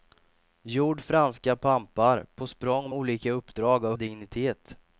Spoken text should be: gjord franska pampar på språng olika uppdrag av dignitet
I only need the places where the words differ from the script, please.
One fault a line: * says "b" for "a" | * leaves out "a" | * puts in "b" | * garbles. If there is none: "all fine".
all fine